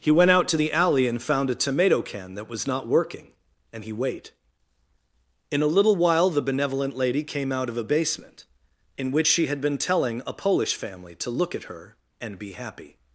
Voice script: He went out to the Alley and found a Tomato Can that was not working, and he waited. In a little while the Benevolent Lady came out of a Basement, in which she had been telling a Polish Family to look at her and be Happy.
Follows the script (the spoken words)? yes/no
no